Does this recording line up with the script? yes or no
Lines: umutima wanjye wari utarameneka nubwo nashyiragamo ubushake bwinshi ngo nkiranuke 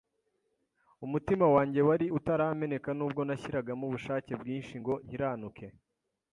yes